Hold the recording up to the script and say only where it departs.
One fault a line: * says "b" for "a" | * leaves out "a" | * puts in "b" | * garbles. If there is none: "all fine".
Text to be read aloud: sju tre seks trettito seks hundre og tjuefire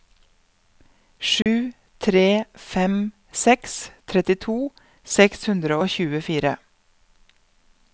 * puts in "fem"